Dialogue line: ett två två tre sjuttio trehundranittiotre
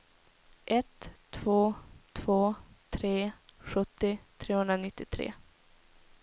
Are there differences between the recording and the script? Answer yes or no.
no